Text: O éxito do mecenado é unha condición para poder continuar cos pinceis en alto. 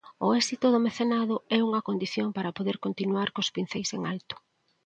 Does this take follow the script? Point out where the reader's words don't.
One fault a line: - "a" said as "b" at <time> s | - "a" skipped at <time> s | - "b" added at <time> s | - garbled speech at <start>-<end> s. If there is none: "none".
none